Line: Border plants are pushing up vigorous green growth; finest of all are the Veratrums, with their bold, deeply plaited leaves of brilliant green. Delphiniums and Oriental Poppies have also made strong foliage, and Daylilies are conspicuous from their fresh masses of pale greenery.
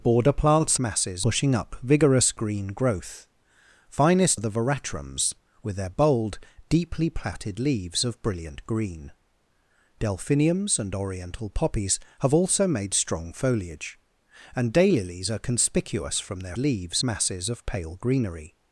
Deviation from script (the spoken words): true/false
true